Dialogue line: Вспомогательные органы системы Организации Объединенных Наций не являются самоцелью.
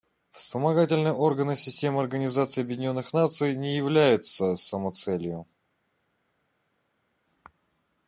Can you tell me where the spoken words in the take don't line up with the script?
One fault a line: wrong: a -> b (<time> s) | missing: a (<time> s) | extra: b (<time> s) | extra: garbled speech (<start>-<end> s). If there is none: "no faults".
no faults